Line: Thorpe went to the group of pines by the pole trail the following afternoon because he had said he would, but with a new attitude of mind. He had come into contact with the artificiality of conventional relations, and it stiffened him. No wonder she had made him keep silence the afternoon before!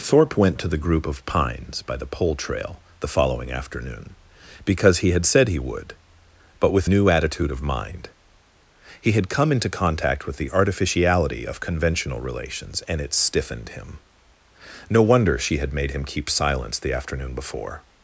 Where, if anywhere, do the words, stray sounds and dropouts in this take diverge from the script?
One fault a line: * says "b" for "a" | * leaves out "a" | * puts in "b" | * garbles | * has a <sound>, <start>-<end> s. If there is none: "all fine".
* leaves out "a"